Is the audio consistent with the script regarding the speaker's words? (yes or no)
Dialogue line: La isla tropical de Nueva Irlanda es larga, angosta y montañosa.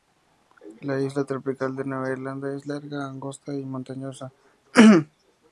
yes